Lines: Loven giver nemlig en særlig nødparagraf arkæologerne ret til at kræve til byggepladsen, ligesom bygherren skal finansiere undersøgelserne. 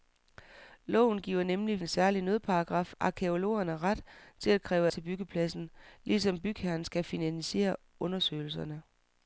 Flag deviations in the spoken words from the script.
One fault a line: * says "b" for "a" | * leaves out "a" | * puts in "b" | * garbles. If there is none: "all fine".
all fine